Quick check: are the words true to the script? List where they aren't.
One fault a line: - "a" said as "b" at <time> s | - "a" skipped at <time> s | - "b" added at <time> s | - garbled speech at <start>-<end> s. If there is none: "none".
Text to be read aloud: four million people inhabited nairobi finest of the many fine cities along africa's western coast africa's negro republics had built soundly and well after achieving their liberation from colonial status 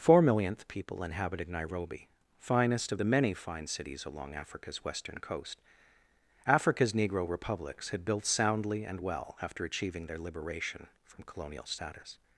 - "million" said as "millionth" at 0.2 s